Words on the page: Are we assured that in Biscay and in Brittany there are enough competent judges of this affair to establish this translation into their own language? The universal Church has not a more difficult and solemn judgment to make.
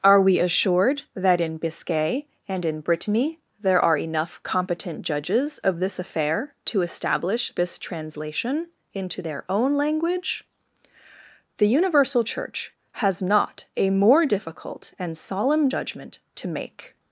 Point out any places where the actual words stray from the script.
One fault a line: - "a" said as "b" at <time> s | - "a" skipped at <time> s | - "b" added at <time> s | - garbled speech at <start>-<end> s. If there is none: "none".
none